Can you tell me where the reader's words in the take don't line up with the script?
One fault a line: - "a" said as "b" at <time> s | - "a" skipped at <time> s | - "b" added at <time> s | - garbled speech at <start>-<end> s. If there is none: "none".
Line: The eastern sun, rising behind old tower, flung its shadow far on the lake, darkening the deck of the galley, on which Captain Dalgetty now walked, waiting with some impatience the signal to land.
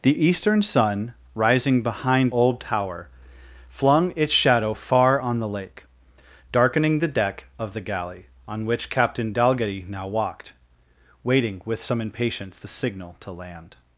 none